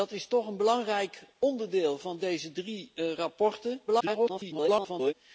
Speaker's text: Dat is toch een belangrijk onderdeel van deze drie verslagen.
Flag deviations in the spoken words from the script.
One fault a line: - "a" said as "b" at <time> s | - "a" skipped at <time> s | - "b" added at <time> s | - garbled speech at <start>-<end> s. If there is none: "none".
- garbled speech at 3.9-5.1 s